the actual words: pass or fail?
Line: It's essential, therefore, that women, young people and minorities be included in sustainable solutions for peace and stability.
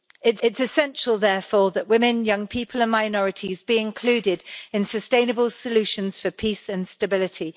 fail